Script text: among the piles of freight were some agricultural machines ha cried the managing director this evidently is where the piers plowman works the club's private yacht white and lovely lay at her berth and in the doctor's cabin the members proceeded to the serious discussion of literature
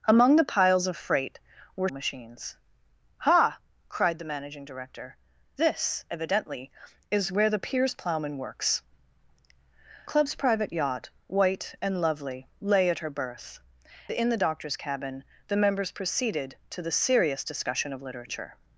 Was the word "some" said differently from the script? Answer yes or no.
yes